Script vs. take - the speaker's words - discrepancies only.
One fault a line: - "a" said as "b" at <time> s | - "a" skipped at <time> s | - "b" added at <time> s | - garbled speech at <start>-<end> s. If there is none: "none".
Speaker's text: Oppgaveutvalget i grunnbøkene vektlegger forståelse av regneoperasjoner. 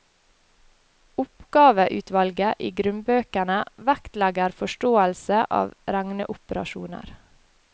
none